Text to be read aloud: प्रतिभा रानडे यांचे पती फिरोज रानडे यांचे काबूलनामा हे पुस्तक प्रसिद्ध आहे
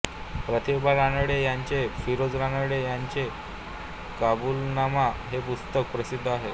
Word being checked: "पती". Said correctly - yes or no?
no